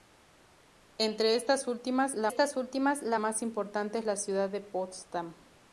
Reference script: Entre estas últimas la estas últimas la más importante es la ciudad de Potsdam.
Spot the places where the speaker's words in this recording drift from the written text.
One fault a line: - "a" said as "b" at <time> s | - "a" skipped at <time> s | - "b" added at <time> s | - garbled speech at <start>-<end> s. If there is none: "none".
none